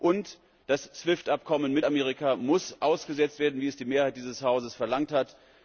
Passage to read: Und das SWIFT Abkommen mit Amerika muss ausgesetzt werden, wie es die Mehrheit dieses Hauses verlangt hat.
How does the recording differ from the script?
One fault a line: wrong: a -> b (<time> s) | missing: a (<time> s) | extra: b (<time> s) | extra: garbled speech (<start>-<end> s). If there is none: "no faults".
no faults